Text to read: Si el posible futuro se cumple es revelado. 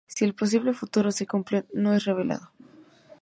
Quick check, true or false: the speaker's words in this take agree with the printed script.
false